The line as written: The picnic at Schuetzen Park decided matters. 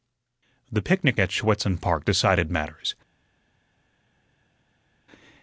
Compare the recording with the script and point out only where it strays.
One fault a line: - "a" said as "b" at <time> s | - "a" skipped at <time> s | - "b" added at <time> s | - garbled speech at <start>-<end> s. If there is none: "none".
none